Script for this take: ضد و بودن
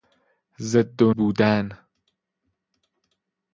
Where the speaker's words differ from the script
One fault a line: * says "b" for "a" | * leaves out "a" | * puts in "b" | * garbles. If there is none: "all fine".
all fine